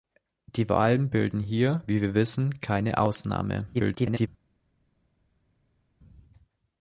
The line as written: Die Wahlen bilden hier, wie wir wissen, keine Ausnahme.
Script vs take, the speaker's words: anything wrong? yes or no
yes